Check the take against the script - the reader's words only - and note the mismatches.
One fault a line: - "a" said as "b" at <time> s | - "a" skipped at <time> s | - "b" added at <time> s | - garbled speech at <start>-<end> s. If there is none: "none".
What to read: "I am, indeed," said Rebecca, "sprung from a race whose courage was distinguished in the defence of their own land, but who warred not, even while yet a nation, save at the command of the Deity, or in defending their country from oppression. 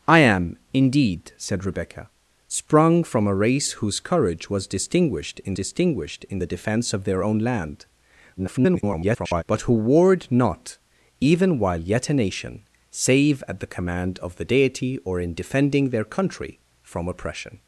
- "distinguished in" added at 5.5 s
- garbled speech at 8.4-9.4 s